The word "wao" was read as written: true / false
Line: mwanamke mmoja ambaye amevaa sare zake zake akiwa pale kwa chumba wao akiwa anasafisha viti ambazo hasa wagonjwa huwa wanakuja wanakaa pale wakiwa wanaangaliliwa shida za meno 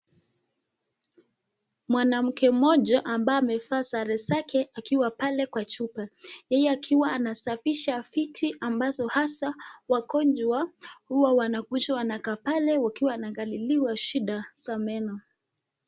false